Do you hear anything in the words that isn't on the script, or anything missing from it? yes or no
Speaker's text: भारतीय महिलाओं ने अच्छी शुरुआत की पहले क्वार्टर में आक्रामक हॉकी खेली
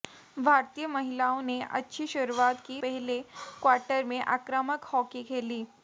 no